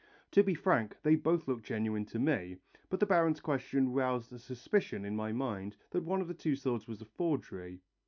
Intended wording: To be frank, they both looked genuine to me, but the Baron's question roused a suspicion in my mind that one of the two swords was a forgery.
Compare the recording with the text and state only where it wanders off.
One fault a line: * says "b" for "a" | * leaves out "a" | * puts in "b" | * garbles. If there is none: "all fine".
all fine